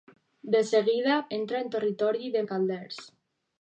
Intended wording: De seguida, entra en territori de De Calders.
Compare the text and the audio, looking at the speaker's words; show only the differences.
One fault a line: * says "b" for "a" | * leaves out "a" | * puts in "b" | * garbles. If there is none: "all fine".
all fine